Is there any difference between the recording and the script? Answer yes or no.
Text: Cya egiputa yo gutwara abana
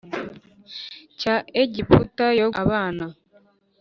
yes